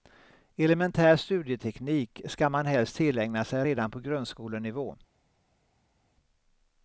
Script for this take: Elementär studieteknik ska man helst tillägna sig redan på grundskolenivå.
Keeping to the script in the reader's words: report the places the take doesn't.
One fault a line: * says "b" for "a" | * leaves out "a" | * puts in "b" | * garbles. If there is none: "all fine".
all fine